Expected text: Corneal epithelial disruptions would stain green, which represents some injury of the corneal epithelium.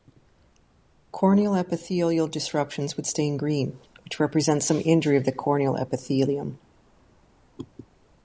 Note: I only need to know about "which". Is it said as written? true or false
true